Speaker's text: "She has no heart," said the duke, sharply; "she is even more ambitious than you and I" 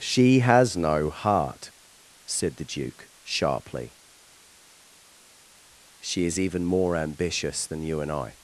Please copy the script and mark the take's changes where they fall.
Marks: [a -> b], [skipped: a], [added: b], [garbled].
"She has no heart," said the duke, sharply; "she is even more ambitious than you and I"